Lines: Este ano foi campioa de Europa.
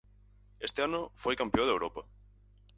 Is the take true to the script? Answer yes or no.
yes